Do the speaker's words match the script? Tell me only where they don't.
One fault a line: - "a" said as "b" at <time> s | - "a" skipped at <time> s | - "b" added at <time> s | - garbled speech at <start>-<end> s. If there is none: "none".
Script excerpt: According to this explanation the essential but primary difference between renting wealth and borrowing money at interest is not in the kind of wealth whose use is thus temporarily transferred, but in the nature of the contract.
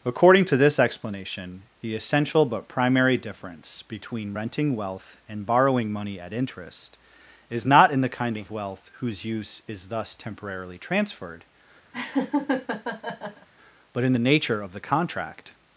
none